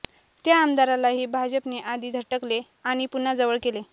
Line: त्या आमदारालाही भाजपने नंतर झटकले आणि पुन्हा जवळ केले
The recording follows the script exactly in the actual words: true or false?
false